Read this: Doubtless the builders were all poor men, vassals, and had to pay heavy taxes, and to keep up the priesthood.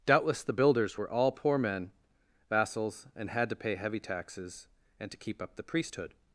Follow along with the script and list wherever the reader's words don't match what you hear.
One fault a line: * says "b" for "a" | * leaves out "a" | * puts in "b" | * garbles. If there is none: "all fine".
all fine